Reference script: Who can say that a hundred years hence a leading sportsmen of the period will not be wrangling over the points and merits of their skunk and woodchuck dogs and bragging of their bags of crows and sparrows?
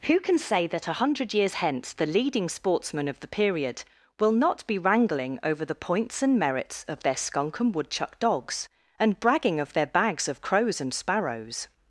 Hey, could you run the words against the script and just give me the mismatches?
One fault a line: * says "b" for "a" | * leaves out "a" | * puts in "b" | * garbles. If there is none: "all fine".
* says "the" for "a"